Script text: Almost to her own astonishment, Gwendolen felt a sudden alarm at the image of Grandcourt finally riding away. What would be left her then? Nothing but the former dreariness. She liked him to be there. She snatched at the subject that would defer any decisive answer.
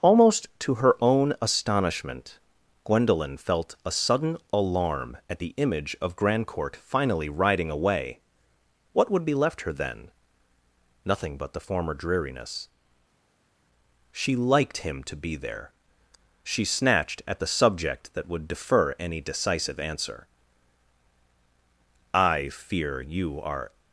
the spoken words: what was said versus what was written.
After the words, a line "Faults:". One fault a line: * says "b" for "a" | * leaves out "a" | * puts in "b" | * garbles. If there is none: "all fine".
Almost to her own astonishment, Gwendolen felt a sudden alarm at the image of Grandcourt finally riding away. What would be left her then? Nothing but the former dreariness. She liked him to be there. She snatched at the subject that would defer any decisive answer. "I fear you are
Faults:
* puts in "I fear you are"